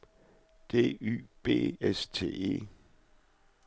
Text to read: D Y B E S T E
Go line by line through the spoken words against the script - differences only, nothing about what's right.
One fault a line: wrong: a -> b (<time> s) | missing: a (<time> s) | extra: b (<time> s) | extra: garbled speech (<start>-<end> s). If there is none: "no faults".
missing: E (1.8 s)